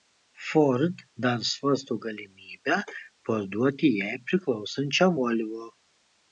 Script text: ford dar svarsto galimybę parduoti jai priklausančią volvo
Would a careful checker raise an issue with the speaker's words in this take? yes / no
no